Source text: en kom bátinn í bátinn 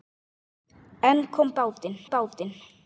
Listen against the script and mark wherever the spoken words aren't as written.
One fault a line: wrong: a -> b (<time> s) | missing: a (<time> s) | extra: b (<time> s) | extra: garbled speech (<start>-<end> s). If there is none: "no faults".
no faults